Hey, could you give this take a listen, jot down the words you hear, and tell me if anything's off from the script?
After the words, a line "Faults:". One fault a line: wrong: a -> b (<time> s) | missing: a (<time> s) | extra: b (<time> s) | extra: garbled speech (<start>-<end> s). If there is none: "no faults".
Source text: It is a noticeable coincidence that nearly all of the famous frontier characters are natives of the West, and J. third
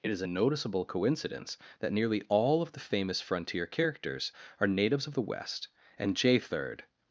It is a noticeable coincidence that nearly all of the famous frontier characters are natives of the West, and J. third
Faults:
no faults